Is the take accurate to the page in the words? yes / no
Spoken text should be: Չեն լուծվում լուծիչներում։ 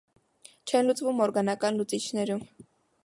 no